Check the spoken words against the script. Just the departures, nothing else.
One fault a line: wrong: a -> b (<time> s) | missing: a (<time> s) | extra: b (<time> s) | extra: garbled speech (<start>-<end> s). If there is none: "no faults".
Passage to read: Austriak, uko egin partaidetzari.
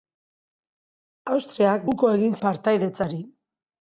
no faults